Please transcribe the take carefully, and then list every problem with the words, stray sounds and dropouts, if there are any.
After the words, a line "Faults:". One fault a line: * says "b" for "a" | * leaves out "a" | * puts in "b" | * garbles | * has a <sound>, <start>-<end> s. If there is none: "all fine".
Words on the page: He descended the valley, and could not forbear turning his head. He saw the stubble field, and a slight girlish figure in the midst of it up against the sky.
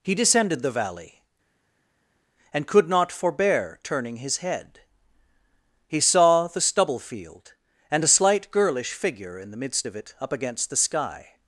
He descended the valley, and could not forbear turning his head. He saw the stubble field, and a slight girlish figure in the midst of it up against the sky.
Faults:
all fine